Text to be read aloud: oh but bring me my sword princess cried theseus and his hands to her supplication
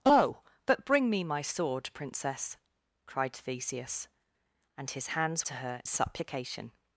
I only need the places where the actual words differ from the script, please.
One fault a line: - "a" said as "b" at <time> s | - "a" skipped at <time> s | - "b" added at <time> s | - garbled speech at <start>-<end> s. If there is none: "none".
none